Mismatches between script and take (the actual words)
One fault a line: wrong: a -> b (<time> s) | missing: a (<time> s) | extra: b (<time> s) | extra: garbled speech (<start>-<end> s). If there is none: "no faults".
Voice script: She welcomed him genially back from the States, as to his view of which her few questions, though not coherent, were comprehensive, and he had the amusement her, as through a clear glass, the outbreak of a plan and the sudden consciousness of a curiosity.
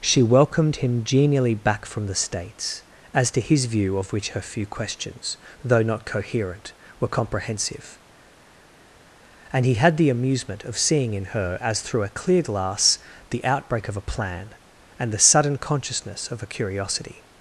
extra: of seeing in (10.6 s)